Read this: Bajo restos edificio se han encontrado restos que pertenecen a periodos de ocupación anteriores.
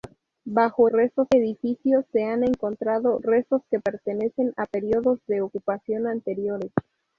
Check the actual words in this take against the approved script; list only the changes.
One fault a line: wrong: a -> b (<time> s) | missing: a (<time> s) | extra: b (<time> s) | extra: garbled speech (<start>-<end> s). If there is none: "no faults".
no faults